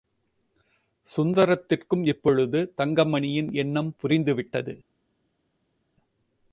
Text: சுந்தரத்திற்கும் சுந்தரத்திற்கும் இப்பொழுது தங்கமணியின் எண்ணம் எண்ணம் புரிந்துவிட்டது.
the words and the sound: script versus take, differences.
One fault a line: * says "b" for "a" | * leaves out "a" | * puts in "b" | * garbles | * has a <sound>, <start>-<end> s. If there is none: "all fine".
* leaves out "சுந்தரத்திற்கும்"
* leaves out "எண்ணம்"